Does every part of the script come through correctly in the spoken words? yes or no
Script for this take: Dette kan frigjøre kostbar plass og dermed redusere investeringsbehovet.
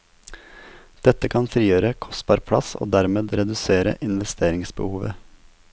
yes